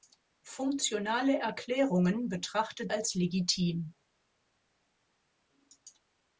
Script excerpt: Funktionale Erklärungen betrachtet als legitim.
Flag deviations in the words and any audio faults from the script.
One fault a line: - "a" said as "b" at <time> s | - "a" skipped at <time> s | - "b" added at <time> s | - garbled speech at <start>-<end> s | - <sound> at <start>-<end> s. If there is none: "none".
none